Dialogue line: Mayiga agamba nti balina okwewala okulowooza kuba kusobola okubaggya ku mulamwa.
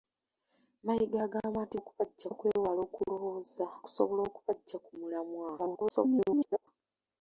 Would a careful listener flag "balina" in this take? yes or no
yes